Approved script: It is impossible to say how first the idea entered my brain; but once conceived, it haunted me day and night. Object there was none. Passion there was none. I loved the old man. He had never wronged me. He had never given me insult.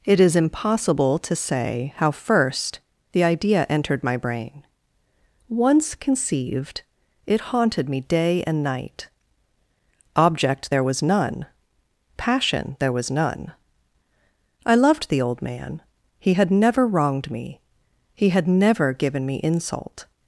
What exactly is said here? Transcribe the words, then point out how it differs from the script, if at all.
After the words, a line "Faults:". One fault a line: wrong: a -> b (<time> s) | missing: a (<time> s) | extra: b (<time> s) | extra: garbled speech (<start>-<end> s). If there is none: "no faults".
It is impossible to say how first the idea entered my brain; once conceived, it haunted me day and night. Object there was none. Passion there was none. I loved the old man. He had never wronged me. He had never given me insult.
Faults:
missing: but (4.6 s)